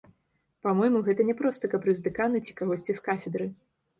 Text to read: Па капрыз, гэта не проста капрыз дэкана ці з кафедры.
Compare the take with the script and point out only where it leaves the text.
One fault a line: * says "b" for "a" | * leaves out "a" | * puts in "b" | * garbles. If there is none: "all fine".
* says "мойму" for "капрыз"
* puts in "кагосьці"